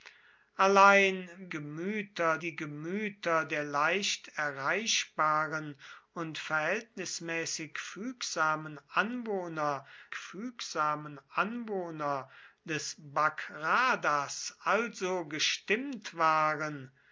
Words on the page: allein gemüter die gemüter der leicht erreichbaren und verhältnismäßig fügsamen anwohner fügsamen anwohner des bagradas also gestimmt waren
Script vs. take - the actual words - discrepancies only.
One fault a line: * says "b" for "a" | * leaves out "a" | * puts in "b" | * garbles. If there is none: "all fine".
all fine